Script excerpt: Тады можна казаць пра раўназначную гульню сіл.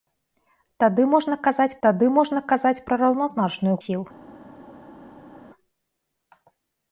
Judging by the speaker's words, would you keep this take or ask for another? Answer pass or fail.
fail